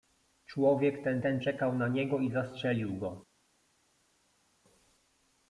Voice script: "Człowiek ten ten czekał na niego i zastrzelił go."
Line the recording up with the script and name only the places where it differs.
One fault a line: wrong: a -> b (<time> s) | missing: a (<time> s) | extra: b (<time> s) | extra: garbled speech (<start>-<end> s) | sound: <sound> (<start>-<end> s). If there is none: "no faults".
no faults